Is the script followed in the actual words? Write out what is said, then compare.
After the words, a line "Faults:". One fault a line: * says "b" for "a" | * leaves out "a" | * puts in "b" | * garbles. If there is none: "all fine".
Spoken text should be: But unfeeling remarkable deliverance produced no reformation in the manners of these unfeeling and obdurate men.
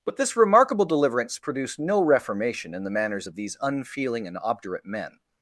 But this remarkable deliverance produced no reformation in the manners of these unfeeling and obdurate men.
Faults:
* says "this" for "unfeeling"